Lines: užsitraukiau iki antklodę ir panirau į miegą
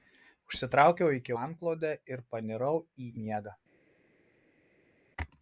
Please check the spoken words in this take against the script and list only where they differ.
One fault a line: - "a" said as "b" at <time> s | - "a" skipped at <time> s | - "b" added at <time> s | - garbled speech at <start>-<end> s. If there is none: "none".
none